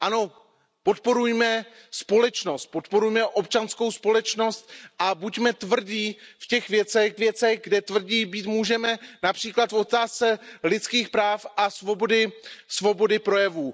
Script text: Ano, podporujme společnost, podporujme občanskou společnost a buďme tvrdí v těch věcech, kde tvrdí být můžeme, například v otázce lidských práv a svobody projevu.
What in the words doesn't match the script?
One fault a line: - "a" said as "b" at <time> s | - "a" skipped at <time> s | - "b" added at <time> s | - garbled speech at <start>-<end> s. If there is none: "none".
- "věcech" added at 7.2 s